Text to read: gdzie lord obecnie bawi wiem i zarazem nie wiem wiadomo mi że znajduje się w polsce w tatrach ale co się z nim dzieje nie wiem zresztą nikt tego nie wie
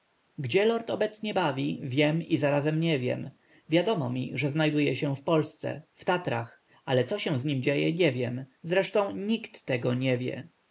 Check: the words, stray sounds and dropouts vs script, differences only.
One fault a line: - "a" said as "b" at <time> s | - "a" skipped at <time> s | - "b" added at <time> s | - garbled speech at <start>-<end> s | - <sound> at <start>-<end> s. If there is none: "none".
none